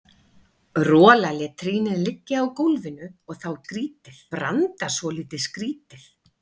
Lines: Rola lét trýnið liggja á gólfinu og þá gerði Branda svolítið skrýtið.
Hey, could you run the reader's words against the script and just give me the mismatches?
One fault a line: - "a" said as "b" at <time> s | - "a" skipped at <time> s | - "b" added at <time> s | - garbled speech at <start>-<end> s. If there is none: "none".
- "gerði" said as "skrýtið" at 3.6 s